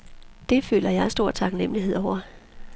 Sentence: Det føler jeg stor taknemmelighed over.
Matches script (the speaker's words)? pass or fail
pass